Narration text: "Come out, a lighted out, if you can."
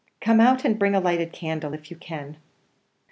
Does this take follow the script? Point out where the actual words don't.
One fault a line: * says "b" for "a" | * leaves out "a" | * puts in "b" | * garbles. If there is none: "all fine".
* puts in "and bring"
* says "candle" for "out"